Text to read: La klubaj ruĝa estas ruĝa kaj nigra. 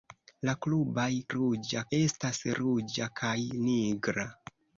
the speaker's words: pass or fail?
pass